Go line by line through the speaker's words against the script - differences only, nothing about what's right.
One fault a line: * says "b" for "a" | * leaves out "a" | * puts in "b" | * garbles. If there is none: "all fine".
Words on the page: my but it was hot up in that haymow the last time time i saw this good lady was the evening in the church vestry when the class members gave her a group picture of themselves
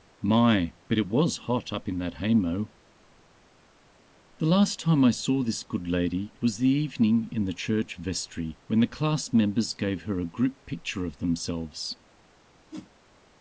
* leaves out "time"